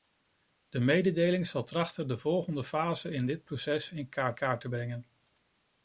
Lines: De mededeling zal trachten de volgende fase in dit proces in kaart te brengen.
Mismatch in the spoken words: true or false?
true